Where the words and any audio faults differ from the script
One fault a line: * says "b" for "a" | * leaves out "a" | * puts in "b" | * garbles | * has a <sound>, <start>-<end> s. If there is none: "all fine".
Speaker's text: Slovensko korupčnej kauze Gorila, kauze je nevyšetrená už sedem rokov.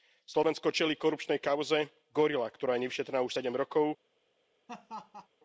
* puts in "čelí"
* says "ktorá" for "kauze"
* has a laugh, 4.7-5.3 s